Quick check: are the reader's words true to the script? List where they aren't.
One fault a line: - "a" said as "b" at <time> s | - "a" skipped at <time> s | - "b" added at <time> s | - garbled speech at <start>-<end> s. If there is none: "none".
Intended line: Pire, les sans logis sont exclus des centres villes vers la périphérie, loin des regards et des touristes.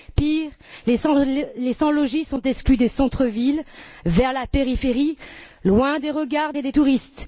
none